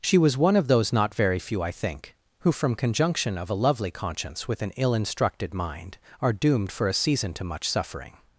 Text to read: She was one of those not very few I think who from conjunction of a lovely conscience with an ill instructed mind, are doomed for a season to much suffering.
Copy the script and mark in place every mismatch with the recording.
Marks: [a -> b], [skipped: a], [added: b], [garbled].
She was one of those not very few I think who from conjunction of a lovely conscience with an ill instructed mind, are doomed for a season to much suffering.